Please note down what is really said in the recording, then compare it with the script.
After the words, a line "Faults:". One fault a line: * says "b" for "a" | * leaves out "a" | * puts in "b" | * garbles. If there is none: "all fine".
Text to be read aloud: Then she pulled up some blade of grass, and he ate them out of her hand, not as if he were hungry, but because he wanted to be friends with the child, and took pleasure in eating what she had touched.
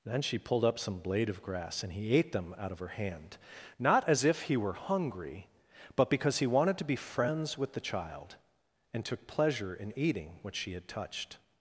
Then she pulled up some blade of grass, and he ate them out of her hand, not as if he were hungry, but because he wanted to be friends with the child, and took pleasure in eating what she had touched.
Faults:
all fine